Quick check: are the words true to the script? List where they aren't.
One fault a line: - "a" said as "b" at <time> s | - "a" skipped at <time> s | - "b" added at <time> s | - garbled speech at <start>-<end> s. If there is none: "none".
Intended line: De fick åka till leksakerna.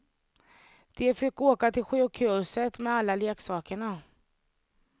- "sjukhuset med alla" added at 1.8 s